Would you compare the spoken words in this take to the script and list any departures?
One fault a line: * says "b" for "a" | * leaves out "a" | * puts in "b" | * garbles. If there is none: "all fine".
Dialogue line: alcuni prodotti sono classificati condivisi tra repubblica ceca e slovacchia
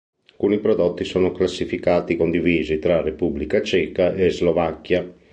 all fine